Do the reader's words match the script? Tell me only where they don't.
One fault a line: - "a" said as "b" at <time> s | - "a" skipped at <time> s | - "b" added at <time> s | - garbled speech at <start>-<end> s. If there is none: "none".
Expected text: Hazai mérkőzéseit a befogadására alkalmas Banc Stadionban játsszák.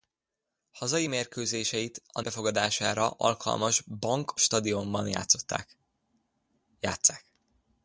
none